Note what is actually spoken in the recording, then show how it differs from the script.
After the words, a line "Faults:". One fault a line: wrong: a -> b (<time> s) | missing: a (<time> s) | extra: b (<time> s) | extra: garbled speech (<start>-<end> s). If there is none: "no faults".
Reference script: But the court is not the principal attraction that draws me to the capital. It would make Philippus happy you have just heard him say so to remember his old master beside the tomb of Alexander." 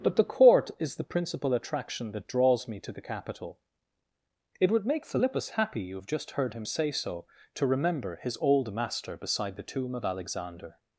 But the court is the principal attraction that draws me to the capital. It would make Philippus happy you have just heard him say so to remember his old master beside the tomb of Alexander."
Faults:
missing: not (0.9 s)